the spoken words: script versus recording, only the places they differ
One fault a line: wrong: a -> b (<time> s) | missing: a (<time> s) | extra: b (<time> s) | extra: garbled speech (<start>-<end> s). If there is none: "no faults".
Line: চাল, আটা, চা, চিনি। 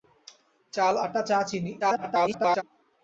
extra: garbled speech (1.8-2.6 s)